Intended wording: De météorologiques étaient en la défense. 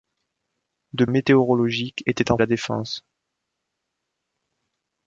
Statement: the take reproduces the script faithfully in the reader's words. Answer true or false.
true